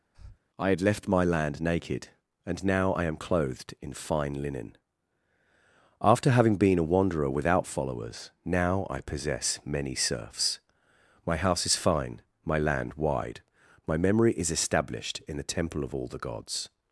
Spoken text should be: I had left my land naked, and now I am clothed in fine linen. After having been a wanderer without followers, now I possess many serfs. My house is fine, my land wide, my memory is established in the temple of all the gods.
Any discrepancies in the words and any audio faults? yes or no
yes